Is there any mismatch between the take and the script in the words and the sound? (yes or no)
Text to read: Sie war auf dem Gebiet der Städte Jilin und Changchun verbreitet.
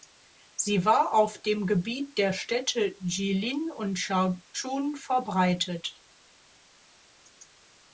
no